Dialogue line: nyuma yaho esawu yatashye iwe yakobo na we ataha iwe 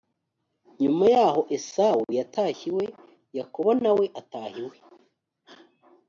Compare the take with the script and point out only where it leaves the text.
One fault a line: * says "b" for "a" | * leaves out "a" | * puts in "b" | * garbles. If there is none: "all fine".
all fine